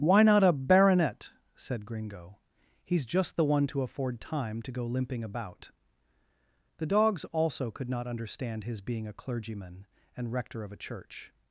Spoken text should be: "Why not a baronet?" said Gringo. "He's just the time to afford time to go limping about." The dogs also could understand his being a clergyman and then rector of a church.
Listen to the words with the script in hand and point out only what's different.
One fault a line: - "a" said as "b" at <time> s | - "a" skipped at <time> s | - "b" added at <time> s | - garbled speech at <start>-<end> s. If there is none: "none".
- "time" said as "one" at 3.5 s
- "not" added at 7.9 s
- "then" skipped at 10.3 s